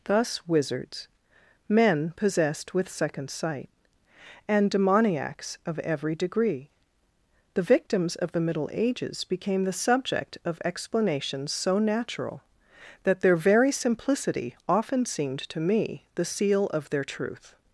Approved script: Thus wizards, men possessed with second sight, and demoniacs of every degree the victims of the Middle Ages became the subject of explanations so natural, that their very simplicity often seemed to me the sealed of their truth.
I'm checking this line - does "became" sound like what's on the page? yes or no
yes